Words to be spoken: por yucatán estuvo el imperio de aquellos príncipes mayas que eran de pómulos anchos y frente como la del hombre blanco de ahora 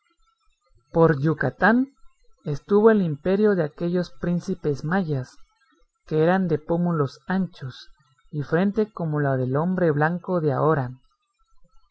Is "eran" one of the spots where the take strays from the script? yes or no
no